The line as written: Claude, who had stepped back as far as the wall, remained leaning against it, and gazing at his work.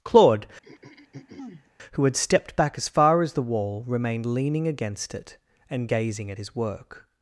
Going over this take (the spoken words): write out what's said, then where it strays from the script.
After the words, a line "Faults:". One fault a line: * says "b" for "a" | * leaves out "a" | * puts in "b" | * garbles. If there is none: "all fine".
Claude, who had stepped back as far as the wall, remained leaning against it, and gazing at his work.
Faults:
all fine